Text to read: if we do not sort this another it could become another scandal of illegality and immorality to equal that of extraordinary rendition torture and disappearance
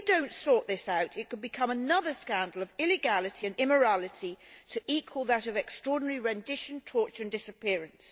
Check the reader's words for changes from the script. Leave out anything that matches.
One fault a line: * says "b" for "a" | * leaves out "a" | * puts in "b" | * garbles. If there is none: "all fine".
* says "out" for "another"